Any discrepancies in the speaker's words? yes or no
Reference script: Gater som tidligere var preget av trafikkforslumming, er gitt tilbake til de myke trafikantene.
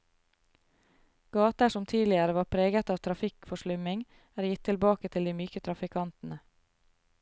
no